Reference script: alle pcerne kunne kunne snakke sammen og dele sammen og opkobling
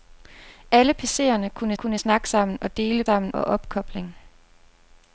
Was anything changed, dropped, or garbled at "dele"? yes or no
no